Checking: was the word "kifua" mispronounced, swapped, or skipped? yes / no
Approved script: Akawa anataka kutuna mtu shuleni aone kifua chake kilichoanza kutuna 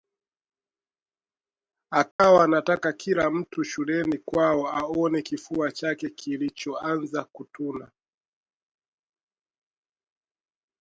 no